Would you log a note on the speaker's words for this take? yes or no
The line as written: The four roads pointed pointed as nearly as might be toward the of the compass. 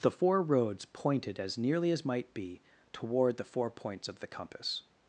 yes